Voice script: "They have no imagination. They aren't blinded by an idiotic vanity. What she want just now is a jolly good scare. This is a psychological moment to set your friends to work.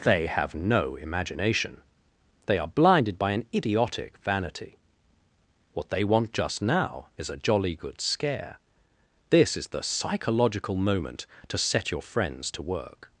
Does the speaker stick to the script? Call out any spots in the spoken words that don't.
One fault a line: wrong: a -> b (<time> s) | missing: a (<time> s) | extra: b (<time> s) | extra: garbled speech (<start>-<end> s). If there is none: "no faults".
wrong: aren't -> are (2.6 s)
wrong: she -> they (5.9 s)
wrong: a -> the (9.7 s)